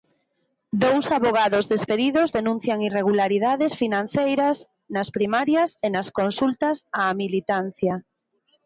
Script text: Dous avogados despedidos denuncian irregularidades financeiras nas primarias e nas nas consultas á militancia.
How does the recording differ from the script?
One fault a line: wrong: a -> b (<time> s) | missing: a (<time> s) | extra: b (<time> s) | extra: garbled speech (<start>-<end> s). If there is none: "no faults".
missing: nas (6.1 s)